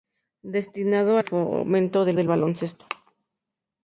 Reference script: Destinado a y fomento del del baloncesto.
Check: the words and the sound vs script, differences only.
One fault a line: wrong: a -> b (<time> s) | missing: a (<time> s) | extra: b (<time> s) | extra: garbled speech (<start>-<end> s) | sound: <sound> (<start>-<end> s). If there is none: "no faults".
no faults